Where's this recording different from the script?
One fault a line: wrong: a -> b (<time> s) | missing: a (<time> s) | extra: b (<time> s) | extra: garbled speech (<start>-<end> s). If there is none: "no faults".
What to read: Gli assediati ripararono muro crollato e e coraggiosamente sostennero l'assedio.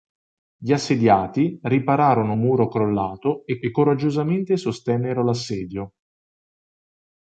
no faults